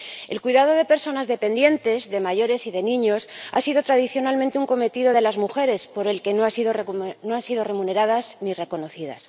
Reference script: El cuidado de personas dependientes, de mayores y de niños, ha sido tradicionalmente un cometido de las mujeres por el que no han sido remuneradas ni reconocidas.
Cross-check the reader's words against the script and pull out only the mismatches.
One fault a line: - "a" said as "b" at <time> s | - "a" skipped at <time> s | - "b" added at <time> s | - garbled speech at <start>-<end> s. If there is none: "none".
none